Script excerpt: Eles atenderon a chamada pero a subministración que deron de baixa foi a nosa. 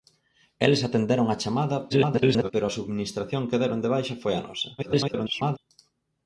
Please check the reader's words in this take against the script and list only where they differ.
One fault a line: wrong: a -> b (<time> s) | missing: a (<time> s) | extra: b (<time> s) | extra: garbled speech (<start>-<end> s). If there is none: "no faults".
extra: garbled speech (1.9-2.5 s)
extra: garbled speech (4.8-5.6 s)